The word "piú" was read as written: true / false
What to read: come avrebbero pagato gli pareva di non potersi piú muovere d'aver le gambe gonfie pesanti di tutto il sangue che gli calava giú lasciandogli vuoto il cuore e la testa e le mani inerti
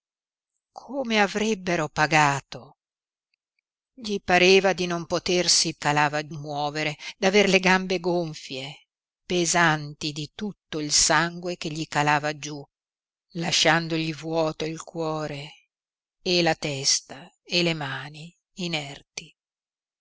false